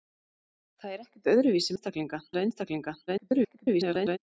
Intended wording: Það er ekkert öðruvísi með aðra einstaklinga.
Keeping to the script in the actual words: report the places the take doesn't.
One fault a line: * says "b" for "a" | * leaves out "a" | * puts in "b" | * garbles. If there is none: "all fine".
* says "einstaklinga" for "með"
* garbles